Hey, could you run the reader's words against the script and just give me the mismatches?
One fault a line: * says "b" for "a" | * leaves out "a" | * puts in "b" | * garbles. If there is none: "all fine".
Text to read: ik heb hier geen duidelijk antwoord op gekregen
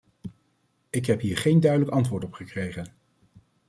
all fine